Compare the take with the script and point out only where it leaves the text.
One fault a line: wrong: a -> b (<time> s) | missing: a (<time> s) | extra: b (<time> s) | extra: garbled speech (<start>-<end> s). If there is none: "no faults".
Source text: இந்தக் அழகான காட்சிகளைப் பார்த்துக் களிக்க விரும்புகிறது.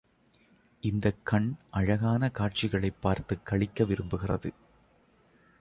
extra: கண் (1.2 s)